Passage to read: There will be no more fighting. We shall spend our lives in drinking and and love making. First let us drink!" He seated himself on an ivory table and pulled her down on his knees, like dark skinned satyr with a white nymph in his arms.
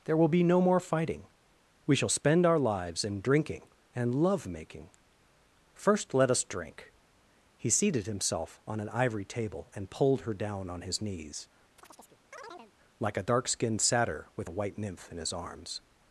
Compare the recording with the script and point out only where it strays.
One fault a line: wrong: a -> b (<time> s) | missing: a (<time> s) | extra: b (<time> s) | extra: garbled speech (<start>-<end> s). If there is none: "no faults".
missing: and (4.2 s)
extra: a (13.2 s)